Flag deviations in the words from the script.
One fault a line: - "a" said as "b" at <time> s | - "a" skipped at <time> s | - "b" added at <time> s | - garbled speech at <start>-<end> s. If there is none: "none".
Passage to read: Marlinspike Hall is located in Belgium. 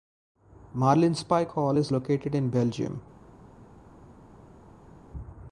none